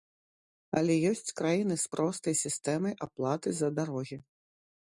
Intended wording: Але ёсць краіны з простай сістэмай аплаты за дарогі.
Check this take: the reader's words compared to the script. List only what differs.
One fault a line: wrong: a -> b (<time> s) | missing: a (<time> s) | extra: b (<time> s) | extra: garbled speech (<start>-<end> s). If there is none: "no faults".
no faults